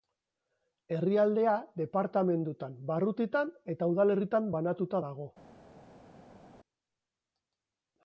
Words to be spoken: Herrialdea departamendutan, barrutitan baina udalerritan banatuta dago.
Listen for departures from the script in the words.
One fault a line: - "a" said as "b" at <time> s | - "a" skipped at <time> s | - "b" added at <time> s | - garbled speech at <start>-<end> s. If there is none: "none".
- "baina" said as "eta" at 3.8 s